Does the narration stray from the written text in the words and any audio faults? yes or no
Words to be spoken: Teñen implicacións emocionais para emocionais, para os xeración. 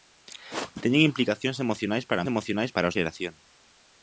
no